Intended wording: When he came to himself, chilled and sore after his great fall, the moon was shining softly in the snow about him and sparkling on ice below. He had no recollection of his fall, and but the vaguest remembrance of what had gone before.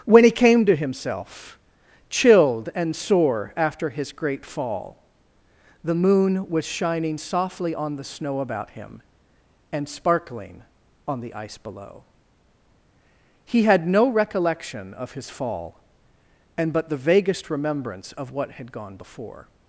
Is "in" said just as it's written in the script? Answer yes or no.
no